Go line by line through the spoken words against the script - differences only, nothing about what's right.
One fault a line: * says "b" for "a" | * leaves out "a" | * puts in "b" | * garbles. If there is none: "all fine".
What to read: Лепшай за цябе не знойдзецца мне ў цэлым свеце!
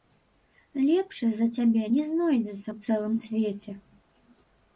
* leaves out "мне"